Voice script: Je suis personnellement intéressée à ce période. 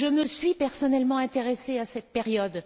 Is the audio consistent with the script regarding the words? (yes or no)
no